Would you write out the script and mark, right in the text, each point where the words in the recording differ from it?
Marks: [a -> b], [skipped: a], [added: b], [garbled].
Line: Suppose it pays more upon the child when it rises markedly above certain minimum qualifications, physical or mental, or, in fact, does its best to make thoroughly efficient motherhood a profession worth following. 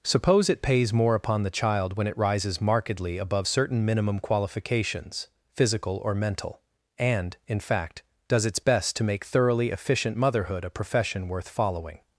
Suppose it pays more upon the child when it rises markedly above certain minimum qualifications, physical or mental, [or, -> and] in fact, does its best to make thoroughly efficient motherhood a profession worth following.